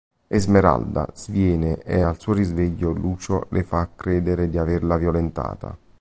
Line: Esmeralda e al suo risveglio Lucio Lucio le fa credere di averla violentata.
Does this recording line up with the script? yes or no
no